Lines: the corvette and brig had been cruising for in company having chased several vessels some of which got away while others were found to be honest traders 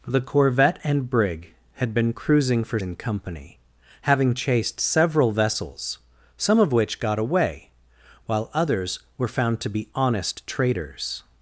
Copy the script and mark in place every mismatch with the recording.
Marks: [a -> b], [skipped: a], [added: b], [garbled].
the corvette and brig had been cruising for in company having chased several vessels some of which got away while others were found to be honest traders